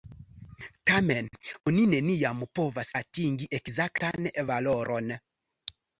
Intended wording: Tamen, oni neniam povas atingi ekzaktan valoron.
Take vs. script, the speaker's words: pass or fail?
pass